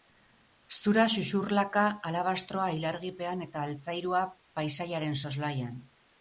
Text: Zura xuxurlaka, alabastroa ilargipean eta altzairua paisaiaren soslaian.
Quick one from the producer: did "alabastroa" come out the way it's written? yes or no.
yes